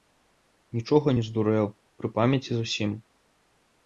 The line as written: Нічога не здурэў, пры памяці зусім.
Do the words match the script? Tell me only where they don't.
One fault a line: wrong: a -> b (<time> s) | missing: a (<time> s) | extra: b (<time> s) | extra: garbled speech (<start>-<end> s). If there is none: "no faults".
no faults